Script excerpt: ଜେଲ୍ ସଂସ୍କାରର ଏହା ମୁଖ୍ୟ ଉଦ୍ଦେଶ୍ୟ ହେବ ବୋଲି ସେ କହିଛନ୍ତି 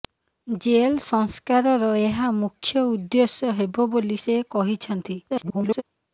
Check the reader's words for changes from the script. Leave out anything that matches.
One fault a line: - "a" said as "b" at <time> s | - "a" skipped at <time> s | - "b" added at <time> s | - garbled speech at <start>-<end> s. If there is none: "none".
- garbled speech at 5.3-5.8 s